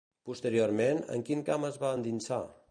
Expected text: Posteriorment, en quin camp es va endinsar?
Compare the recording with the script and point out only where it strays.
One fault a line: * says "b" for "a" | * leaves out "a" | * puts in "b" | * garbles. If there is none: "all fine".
all fine